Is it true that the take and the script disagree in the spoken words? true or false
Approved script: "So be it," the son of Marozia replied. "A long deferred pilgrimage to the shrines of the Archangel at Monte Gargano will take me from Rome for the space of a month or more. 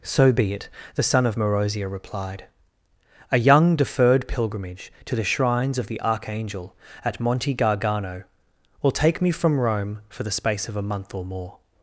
true